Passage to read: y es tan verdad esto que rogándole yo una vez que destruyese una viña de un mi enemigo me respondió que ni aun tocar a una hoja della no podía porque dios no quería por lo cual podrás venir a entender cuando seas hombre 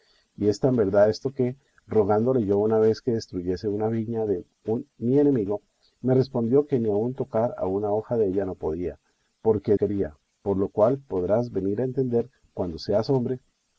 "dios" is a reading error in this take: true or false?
true